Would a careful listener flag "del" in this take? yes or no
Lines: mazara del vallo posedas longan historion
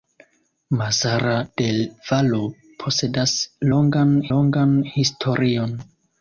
no